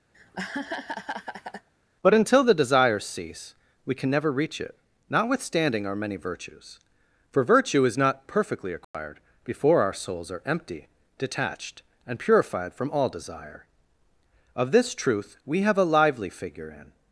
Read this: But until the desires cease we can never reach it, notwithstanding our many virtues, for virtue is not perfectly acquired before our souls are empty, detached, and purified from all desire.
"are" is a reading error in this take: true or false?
false